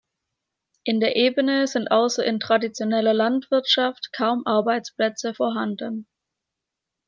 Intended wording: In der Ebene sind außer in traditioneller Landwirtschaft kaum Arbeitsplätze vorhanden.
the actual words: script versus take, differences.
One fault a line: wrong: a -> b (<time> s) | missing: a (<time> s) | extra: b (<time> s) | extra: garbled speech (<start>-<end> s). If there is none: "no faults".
no faults